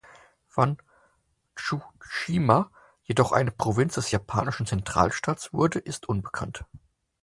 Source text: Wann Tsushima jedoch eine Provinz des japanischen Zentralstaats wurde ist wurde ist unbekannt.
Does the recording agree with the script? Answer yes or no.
no